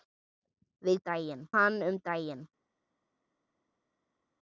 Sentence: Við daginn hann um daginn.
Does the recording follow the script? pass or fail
pass